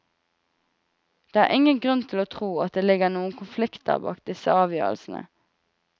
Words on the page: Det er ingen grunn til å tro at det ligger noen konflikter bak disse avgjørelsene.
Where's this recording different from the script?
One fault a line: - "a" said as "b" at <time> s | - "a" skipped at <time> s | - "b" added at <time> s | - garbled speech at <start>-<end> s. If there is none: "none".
none